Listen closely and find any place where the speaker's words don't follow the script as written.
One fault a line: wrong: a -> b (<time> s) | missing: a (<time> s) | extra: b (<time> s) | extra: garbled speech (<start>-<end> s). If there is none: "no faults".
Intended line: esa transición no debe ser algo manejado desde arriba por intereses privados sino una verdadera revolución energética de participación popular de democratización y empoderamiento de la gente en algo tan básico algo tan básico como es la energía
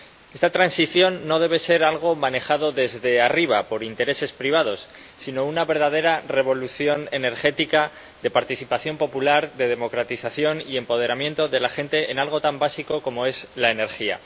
wrong: esa -> esta (0.3 s)
missing: algo tan básico (13.0 s)